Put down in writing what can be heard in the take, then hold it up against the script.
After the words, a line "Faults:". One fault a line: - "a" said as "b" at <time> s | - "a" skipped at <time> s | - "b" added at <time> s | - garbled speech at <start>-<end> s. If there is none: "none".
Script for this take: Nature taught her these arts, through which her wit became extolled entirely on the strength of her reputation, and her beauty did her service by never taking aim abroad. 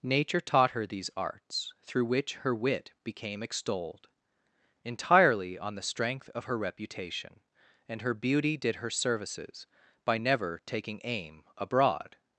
Nature taught her these arts, through which her wit became extolled entirely on the strength of her reputation, and her beauty did her services by never taking aim abroad.
Faults:
- "service" said as "services" at 8.9 s